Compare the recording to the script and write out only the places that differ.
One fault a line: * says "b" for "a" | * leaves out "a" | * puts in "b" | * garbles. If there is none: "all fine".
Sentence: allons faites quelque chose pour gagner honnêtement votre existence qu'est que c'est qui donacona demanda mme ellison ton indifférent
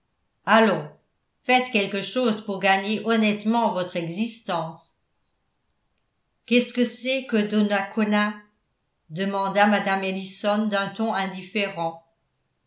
* puts in "ce"
* says "que" for "qui"
* puts in "d'un"